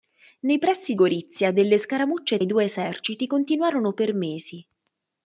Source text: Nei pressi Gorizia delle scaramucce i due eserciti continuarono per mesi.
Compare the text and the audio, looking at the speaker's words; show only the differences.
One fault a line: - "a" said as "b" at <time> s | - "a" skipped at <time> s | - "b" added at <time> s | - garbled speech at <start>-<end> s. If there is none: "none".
none